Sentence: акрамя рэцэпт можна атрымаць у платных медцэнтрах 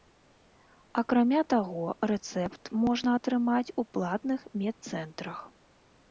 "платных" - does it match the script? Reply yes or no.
yes